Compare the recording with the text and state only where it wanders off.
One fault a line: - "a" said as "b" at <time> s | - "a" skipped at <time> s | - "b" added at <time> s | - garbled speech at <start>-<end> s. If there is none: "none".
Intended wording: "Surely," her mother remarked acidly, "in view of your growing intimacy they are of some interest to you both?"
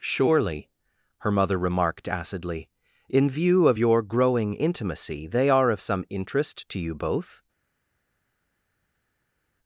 none